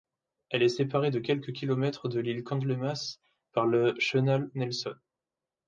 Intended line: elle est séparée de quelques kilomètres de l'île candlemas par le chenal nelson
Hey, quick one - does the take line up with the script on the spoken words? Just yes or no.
yes